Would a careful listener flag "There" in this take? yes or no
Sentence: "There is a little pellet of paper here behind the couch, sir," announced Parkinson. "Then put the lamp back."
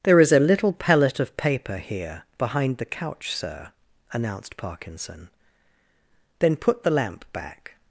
no